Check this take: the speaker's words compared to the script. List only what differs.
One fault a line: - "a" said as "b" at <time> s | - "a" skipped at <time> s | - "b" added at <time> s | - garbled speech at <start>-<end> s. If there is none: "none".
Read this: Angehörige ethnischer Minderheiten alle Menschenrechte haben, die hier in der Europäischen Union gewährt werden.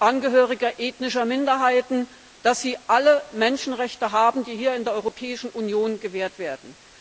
none